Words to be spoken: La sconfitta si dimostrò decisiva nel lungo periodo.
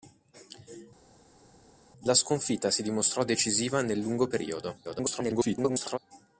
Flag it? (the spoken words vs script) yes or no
yes